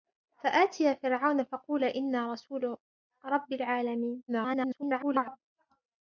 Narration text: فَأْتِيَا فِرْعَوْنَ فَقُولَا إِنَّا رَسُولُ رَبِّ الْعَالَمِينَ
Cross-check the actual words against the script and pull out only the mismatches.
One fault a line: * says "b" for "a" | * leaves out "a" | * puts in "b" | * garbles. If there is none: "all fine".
* garbles